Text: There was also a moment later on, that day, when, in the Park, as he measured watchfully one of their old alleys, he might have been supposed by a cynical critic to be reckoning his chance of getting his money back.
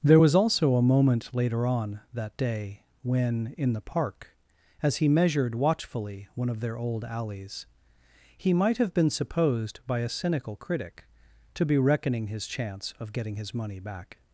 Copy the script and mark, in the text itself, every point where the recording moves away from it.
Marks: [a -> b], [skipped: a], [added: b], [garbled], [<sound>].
There was also a moment later on, that day, when, in the Park, as he measured watchfully one of their old alleys, he might have been supposed by a cynical critic to be reckoning his chance of getting his money back.